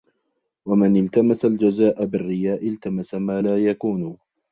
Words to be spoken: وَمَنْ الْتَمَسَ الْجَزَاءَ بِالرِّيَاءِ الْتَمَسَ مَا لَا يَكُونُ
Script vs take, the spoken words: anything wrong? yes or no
no